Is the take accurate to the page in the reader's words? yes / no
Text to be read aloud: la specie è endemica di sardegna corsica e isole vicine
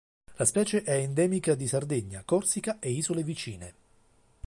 yes